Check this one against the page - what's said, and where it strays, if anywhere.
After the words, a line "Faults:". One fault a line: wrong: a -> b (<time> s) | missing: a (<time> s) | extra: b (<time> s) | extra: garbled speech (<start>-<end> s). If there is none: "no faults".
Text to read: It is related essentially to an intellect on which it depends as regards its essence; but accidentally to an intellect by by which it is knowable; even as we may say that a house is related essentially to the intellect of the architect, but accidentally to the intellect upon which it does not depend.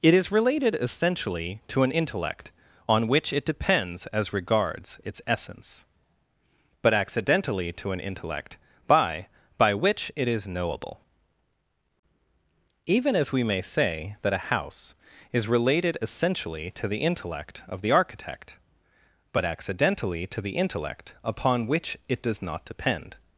It is related essentially to an intellect on which it depends as regards its essence; but accidentally to an intellect by by which it is knowable; even as we may say that a house is related essentially to the intellect of the architect, but accidentally to the intellect upon which it does not depend.
Faults:
no faults